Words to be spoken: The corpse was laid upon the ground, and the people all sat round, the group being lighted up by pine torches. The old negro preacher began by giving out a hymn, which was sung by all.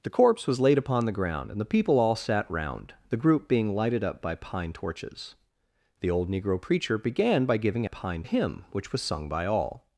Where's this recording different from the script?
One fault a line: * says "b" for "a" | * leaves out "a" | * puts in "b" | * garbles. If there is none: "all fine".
* says "pine" for "out"